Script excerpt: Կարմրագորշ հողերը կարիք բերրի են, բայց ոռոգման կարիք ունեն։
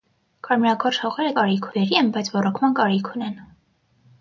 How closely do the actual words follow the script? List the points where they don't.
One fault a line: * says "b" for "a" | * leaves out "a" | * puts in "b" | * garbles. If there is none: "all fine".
all fine